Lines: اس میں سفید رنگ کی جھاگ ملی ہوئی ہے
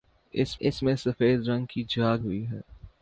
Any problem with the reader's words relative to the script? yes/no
yes